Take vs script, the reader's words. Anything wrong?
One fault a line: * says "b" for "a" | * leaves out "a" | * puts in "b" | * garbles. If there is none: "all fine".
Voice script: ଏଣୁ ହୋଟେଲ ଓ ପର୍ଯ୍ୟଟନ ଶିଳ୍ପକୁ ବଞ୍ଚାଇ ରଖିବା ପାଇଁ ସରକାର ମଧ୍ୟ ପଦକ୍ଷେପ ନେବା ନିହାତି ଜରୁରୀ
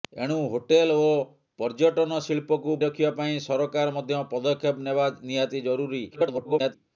* leaves out "ବଞ୍ଚାଇ"
* garbles